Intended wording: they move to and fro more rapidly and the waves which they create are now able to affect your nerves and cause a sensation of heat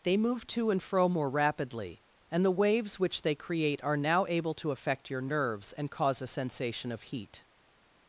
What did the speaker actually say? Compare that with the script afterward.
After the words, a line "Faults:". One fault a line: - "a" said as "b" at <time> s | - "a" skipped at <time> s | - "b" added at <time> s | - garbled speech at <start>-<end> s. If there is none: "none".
they move to and fro more rapidly and the waves which they create are now able to affect your nerves and cause a sensation of heat
Faults:
none